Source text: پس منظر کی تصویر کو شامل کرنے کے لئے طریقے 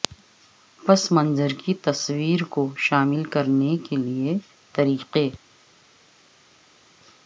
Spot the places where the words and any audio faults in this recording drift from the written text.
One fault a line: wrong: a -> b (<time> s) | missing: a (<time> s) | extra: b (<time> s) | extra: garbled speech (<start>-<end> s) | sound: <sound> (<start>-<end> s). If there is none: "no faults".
no faults